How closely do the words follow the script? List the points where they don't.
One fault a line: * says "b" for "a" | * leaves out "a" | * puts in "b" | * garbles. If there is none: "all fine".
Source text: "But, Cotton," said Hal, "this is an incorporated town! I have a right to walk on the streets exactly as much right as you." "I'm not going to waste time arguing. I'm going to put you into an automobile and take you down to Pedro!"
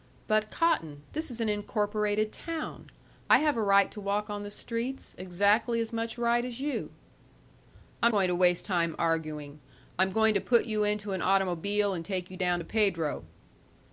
* leaves out "said Hal"
* leaves out "not"